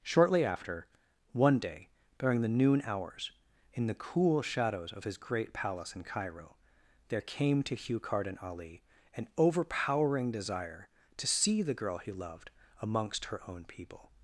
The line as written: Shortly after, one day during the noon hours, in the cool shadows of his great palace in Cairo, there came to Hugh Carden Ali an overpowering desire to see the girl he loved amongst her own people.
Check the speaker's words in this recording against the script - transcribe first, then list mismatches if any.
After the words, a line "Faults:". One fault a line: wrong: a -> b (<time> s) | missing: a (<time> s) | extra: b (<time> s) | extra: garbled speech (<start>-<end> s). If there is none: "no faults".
Shortly after, one day during the noon hours, in the cool shadows of his great palace in Cairo, there came to Hugh Carden Ali an overpowering desire to see the girl he loved amongst her own people.
Faults:
no faults